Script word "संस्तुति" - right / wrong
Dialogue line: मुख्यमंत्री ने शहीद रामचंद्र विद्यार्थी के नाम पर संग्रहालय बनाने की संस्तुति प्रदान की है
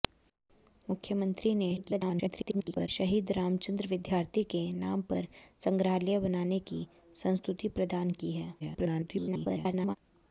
right